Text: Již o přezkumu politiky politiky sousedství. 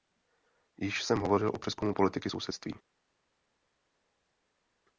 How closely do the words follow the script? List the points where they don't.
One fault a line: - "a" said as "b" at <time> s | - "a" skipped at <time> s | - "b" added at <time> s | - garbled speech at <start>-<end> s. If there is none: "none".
- "jsem hovořil" added at 1.0 s
- "politiky" skipped at 2.3 s